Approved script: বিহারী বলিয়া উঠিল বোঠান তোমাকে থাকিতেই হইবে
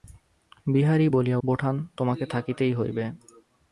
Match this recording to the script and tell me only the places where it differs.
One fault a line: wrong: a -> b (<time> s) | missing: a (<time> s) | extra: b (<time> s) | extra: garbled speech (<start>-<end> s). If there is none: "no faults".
missing: উঠিল (1.4 s)